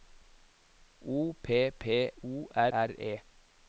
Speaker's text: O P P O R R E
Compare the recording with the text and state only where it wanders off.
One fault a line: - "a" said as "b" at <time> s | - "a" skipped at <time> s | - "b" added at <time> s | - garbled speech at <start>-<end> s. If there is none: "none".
none